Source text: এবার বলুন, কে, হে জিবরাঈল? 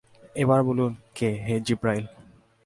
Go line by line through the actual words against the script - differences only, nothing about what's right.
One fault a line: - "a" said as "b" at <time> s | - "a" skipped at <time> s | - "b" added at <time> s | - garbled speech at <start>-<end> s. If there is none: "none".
none